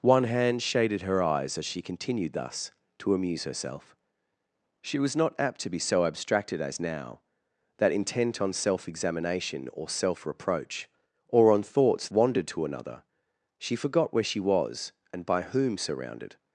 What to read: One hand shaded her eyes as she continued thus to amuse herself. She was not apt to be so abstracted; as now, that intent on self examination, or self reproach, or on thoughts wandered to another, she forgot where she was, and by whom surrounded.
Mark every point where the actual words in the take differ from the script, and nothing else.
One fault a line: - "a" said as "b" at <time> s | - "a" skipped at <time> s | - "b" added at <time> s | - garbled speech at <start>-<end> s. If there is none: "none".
none